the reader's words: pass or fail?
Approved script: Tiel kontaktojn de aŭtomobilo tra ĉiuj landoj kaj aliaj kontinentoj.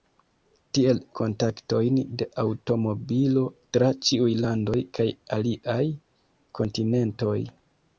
pass